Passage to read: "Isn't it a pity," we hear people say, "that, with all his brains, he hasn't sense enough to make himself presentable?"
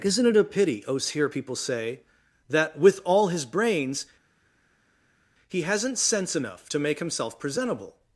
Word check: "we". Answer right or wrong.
wrong